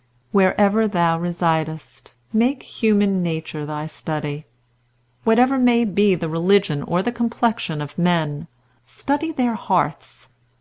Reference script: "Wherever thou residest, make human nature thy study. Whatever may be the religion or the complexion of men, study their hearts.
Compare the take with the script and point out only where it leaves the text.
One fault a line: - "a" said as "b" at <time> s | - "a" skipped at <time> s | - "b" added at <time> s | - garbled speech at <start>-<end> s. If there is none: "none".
none